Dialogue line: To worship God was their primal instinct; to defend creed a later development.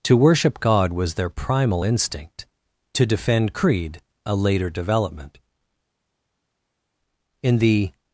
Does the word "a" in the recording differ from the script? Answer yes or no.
no